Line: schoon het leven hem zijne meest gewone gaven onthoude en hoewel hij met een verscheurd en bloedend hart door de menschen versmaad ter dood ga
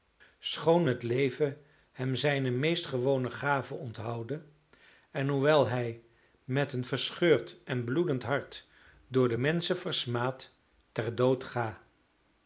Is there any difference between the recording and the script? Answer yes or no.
no